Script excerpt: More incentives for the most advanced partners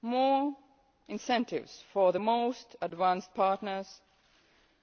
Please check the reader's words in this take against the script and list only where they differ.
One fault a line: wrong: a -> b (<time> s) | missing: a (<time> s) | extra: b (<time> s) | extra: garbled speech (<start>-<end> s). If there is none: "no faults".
no faults